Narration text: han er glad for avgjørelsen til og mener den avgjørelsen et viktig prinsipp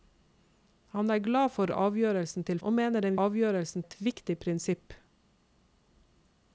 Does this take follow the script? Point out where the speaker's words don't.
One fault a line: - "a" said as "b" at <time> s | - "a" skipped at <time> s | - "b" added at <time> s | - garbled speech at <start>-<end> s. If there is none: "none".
none